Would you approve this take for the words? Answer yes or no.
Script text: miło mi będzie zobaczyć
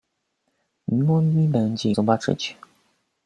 yes